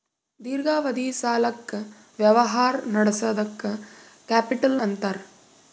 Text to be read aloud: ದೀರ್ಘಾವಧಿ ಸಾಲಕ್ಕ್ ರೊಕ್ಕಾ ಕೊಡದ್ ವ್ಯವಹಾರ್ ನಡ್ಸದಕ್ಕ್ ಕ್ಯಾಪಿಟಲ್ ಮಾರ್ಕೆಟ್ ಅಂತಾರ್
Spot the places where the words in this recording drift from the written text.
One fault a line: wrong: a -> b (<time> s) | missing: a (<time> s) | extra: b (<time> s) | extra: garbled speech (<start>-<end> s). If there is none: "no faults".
missing: ರೊಕ್ಕಾ ಕೊಡದ್ (1.7 s)
missing: ಮಾರ್ಕೆಟ್ (4.8 s)